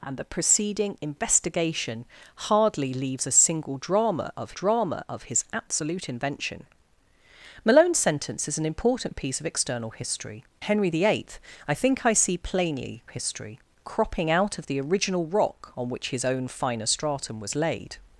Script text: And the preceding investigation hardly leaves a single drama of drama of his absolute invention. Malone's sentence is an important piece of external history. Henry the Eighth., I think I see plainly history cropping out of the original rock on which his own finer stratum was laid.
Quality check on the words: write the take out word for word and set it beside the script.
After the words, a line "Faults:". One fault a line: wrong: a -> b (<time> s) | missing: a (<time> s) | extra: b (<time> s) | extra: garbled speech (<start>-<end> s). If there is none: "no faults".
And the preceding investigation hardly leaves a single drama of drama of his absolute invention. Malone's sentence is an important piece of external history. Henry the Eighth., I think I see plainly history cropping out of the original rock on which his own finer stratum was laid.
Faults:
no faults